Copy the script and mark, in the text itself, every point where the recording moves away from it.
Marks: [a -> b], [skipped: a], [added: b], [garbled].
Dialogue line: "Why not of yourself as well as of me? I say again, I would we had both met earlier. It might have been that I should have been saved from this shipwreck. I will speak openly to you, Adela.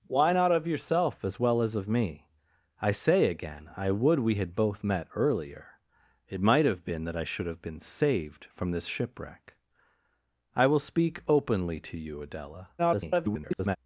"Why not of yourself as well as of me? I say again, I would we had both met earlier. It might have been that I should have been saved from this shipwreck. I will speak openly to you, Adela. [garbled]